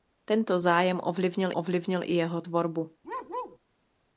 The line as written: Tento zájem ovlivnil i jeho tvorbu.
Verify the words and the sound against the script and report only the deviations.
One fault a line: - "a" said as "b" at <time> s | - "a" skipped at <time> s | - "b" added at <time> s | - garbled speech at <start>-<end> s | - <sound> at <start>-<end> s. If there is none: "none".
- "ovlivnil" added at 1.5 s
- bark at 3.0-3.6 s